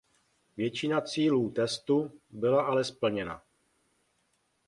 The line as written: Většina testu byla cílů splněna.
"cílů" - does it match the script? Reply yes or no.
no